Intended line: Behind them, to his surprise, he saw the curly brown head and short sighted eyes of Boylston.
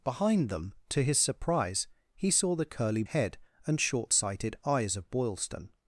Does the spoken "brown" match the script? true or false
false